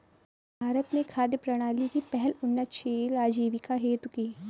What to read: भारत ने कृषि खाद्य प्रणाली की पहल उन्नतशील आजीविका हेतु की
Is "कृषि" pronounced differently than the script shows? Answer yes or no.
yes